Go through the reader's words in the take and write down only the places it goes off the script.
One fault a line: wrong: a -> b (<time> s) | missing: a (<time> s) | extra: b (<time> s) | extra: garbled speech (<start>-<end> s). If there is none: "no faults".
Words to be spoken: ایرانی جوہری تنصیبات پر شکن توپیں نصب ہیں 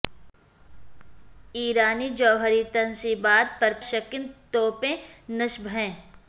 no faults